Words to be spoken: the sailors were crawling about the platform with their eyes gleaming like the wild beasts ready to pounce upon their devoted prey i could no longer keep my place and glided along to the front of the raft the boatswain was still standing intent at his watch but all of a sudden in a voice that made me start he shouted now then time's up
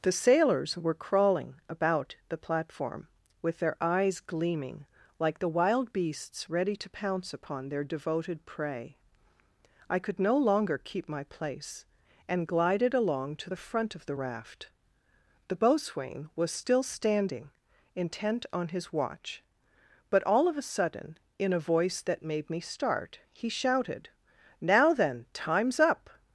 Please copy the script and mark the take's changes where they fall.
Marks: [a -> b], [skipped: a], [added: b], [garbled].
the sailors were crawling about the platform with their eyes gleaming like the wild beasts ready to pounce upon their devoted prey i could no longer keep my place and glided along to the front of the raft the boatswain was still standing intent [at -> on] his watch but all of a sudden in a voice that made me start he shouted now then time's up